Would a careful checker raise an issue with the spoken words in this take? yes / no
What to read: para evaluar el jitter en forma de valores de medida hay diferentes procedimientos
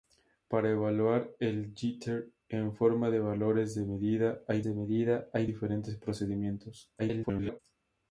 yes